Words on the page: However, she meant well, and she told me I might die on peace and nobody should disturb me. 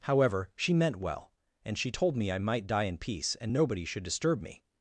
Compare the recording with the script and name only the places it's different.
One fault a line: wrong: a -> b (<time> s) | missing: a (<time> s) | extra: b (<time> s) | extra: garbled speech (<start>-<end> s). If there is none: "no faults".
wrong: on -> in (2.8 s)